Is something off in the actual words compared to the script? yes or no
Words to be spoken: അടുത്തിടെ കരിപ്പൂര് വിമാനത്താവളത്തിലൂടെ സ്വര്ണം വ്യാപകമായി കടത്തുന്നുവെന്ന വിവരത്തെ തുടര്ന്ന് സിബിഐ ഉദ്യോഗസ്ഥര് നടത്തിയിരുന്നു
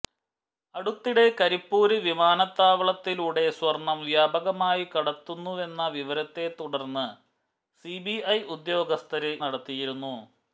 no